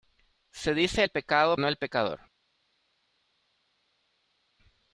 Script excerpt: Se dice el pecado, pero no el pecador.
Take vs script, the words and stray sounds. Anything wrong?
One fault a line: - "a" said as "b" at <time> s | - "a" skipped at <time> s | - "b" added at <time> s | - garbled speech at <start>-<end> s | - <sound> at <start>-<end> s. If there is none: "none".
- "pero" skipped at 1.6 s